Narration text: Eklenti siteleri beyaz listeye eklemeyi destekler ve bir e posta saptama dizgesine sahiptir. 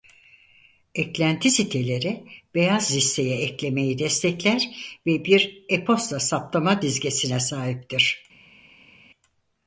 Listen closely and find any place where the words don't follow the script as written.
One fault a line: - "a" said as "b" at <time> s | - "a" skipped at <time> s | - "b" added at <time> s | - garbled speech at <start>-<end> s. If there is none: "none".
none